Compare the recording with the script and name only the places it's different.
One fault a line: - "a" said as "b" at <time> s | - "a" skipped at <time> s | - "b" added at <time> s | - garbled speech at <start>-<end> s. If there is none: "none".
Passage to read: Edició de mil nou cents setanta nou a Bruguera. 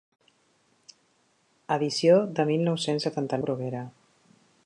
- "nou" skipped at 3.4 s